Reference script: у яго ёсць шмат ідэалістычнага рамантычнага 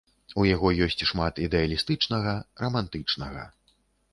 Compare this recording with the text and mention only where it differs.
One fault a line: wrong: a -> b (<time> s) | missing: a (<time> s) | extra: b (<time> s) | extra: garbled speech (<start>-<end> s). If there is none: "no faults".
no faults